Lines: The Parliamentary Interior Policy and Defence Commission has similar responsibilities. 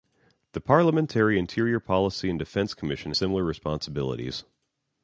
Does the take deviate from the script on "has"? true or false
true